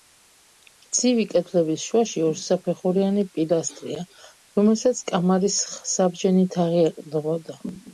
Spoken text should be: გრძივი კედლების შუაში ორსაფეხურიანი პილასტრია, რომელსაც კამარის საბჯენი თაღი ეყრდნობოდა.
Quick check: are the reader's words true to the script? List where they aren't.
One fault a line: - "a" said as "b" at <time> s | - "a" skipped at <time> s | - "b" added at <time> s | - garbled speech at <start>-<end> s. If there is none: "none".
none